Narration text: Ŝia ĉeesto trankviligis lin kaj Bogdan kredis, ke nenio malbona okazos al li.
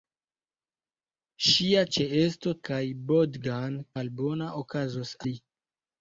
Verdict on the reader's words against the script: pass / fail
fail